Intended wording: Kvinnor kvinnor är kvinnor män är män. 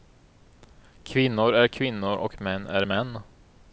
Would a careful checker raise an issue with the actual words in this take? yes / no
yes